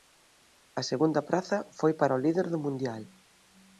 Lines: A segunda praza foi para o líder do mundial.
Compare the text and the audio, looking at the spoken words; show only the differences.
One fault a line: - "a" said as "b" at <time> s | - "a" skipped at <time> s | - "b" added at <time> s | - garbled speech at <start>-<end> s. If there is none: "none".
none